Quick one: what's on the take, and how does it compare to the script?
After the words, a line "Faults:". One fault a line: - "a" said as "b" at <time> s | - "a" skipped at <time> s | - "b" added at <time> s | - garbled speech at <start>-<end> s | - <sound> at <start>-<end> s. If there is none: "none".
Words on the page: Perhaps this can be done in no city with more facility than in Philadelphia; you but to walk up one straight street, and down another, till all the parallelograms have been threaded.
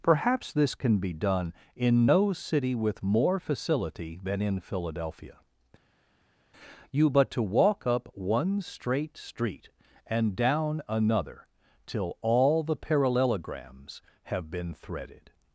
Perhaps this can be done in no city with more facility than in Philadelphia; you but to walk up one straight street, and down another, till all the parallelograms have been threaded.
Faults:
none